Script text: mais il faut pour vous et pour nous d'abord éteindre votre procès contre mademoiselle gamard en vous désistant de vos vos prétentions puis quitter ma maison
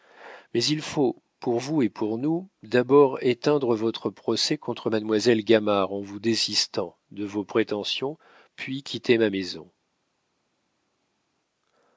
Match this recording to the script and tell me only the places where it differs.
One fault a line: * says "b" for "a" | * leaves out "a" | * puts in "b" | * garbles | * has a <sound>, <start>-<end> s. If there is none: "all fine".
* leaves out "vos"